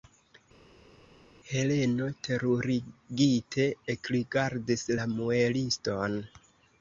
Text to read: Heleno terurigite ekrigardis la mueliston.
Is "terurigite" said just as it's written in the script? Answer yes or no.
yes